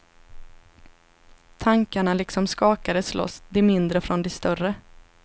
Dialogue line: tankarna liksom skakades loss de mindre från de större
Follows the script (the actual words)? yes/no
yes